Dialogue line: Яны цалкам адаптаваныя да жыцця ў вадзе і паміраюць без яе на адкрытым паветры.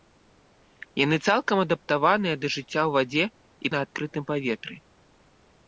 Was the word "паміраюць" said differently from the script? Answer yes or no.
yes